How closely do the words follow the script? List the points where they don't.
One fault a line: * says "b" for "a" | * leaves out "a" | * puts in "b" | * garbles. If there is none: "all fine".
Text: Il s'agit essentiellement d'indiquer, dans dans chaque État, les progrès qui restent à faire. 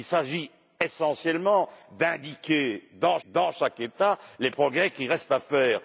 all fine